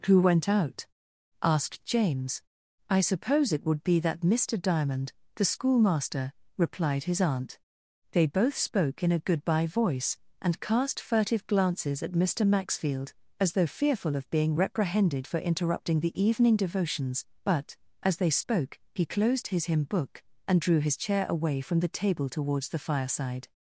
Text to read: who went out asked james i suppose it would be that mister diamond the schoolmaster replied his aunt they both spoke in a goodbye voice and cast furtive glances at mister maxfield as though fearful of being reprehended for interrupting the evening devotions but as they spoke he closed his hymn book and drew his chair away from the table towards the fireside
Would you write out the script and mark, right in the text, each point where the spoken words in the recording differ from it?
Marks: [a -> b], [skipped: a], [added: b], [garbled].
who went out asked james i suppose it would be that mister diamond the schoolmaster replied his aunt they both spoke in a goodbye voice and cast furtive glances at mister maxfield as though fearful of being reprehended for interrupting the evening devotions but as they spoke he closed his hymn book and drew his chair away from the table towards the fireside